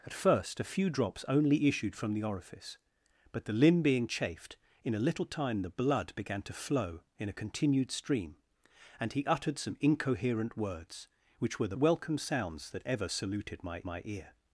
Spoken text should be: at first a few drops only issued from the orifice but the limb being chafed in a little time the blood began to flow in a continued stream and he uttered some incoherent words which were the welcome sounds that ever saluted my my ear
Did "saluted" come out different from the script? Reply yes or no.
no